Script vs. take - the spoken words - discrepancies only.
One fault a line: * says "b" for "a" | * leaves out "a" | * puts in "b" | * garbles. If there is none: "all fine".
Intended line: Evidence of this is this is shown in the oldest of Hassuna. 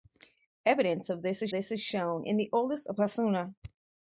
all fine